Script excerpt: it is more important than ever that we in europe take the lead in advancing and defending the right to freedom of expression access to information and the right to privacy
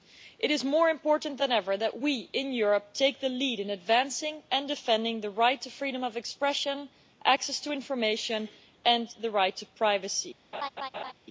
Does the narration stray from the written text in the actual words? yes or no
no